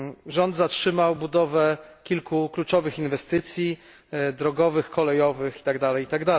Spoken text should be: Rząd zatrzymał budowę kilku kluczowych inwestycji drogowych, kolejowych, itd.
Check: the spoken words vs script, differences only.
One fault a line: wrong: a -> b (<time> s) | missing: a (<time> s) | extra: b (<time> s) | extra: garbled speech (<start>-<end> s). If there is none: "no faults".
no faults